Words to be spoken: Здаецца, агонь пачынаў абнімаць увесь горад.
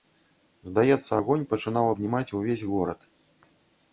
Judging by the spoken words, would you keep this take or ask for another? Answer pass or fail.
pass